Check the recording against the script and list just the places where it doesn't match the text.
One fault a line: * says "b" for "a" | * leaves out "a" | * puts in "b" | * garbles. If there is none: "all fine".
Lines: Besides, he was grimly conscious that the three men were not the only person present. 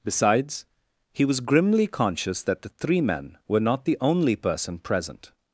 all fine